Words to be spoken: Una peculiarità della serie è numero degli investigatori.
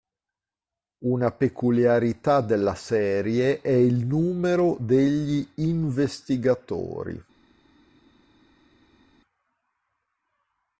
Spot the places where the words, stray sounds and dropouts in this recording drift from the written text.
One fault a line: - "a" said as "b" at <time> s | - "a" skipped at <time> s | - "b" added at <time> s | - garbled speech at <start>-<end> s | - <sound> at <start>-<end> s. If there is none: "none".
- "il" added at 3.7 s